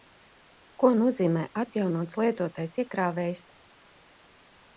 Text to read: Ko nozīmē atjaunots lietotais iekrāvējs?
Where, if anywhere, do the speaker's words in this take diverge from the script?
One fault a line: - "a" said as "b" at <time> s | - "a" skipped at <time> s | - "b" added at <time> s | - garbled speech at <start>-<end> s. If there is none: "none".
none